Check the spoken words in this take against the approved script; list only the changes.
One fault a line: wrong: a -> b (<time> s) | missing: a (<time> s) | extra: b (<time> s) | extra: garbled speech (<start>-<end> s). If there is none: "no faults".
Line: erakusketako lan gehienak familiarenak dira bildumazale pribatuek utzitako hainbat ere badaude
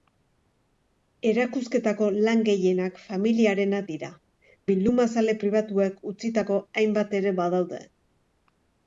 no faults